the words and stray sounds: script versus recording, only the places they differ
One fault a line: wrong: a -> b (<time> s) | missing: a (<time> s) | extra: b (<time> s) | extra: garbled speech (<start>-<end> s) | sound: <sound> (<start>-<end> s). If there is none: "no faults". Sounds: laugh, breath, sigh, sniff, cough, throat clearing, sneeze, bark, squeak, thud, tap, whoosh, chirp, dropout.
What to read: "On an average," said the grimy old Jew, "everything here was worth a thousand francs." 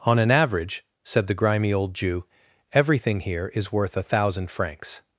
wrong: was -> is (3.5 s)